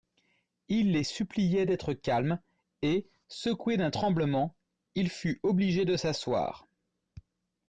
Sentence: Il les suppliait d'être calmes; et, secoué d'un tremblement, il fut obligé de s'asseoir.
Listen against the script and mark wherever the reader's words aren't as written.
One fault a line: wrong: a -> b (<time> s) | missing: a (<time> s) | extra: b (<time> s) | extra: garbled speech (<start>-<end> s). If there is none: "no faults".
no faults